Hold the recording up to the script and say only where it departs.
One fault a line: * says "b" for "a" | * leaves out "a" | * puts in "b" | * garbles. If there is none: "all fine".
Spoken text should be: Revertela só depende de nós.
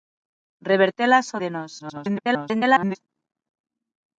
* leaves out "depende"
* garbles